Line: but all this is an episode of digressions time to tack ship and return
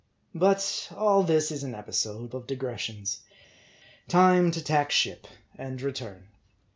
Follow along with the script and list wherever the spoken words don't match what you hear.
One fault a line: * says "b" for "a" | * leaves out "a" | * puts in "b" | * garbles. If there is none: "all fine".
all fine